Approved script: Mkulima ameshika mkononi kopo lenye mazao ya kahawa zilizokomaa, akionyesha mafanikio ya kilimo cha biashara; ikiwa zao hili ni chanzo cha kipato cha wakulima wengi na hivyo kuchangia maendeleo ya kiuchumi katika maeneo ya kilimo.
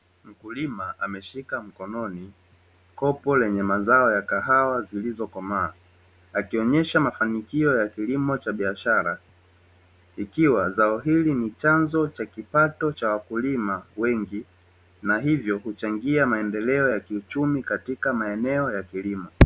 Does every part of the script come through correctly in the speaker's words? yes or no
yes